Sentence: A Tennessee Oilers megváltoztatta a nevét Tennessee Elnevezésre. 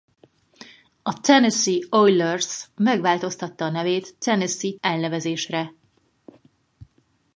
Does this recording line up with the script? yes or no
yes